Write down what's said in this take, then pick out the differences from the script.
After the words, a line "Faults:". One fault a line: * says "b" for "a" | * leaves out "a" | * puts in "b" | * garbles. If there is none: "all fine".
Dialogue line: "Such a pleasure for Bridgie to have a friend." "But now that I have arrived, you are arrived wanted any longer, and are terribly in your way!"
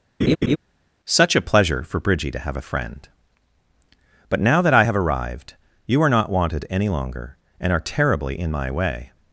"Such a pleasure for Bridgie to have a friend." "But now that I have arrived, you are not wanted any longer, and are terribly in my way!"
Faults:
* says "not" for "arrived"
* says "my" for "your"